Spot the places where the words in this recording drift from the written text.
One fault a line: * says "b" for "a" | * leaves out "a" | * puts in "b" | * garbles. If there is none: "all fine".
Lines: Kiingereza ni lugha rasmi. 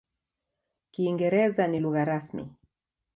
all fine